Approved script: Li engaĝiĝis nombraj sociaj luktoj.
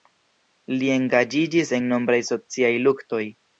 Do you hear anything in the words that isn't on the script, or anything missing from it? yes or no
yes